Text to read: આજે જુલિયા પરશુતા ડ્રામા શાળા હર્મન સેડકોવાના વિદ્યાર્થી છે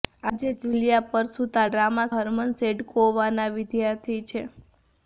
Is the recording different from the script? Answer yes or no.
yes